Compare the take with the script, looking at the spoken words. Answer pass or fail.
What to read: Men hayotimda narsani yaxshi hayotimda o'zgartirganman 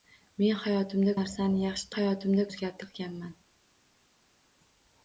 pass